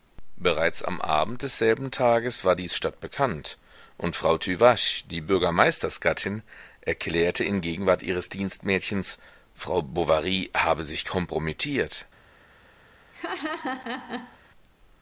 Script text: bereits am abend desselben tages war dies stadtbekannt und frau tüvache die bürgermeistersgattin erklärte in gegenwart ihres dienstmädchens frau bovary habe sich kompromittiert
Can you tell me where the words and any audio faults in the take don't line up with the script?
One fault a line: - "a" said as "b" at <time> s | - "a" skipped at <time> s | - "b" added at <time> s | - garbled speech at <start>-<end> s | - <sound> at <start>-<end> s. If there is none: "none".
- laugh at 13.1-14.4 s